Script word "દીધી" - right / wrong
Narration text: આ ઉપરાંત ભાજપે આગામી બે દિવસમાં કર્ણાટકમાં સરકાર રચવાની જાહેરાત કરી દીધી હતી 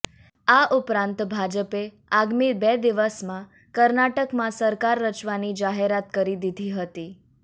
right